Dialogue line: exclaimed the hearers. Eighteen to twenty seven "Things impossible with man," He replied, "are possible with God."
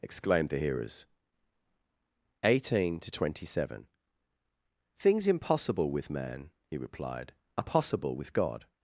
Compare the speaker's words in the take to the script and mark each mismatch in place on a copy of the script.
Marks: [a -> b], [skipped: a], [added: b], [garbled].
exclaimed the hearers. Eighteen to twenty seven "Things impossible with man," He replied, "are possible with God."